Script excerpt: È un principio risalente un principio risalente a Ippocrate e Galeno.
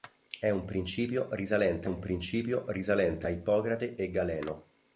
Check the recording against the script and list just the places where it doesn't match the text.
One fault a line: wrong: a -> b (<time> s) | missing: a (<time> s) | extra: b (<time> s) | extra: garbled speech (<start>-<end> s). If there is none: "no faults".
no faults